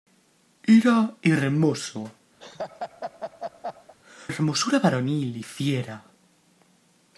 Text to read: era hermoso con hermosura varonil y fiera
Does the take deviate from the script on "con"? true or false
true